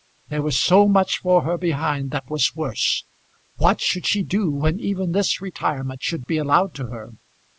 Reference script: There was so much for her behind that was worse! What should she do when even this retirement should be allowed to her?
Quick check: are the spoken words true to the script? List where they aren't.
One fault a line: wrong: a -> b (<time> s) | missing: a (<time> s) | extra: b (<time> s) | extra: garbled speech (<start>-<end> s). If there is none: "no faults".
no faults